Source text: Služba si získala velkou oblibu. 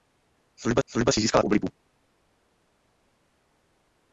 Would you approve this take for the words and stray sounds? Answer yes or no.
no